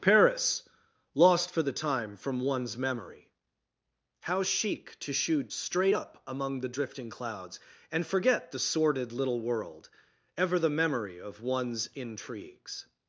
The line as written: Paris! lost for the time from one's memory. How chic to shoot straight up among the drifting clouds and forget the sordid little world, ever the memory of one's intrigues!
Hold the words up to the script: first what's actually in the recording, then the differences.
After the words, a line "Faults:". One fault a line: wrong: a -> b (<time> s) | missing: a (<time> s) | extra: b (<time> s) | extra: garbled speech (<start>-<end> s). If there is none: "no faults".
Paris! lost for the time from one's memory. How chic to shoot straight up among the drifting clouds and forget the sordid little world, ever the memory of one's intrigues!
Faults:
no faults